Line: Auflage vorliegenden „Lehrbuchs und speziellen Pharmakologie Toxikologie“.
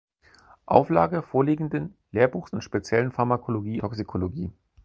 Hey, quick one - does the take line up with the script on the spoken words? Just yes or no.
yes